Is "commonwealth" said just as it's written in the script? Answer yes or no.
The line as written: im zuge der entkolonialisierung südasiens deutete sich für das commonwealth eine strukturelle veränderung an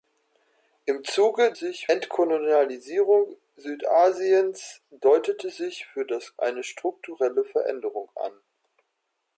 no